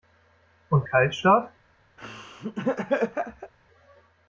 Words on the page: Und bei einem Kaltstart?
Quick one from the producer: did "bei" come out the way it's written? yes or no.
no